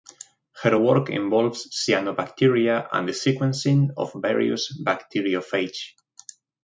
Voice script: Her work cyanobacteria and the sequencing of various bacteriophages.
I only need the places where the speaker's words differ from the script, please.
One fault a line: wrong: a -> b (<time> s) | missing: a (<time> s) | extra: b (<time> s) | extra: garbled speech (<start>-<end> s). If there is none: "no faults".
extra: involves (1.1 s)